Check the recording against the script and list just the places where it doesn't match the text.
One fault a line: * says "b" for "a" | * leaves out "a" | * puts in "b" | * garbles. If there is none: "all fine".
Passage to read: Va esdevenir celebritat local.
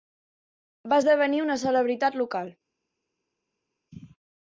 * puts in "una"